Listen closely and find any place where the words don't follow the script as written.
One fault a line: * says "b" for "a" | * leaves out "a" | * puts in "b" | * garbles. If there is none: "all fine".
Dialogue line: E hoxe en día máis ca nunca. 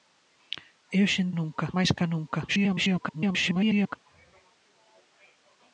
* says "nunca" for "día"
* garbles